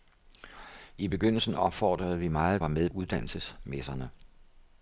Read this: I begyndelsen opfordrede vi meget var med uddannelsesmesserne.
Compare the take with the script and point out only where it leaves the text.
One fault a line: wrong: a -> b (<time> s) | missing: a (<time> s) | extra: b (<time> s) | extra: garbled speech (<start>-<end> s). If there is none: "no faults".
no faults